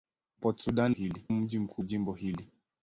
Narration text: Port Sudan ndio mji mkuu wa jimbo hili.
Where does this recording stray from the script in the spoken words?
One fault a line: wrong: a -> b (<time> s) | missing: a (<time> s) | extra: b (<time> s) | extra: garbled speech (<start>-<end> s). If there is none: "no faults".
wrong: ndio -> hili (0.9 s)
missing: wa (1.8 s)